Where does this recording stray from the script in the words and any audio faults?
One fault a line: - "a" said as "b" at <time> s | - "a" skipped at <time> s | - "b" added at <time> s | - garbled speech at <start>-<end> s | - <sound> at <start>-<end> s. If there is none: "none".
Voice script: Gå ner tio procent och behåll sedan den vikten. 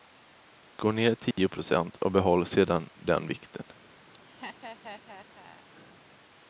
- dropout at 1.3-1.4 s
- laugh at 4.1-5.7 s